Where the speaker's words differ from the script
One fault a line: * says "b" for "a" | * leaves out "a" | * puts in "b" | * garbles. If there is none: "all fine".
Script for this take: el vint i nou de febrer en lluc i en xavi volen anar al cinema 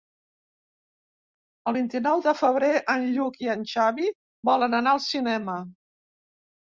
all fine